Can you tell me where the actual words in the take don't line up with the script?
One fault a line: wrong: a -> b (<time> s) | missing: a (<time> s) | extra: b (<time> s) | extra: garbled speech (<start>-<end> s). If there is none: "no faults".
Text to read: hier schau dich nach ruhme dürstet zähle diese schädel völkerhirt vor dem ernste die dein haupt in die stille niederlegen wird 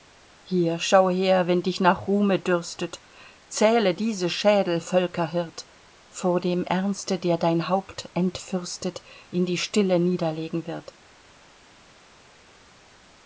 extra: her wenn (1.1 s)
wrong: die -> der (7.2 s)
extra: entfürstet (8.2 s)